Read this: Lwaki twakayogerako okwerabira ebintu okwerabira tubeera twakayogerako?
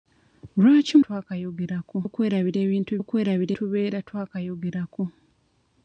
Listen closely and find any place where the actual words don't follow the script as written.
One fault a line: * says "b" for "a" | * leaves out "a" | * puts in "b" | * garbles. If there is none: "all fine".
all fine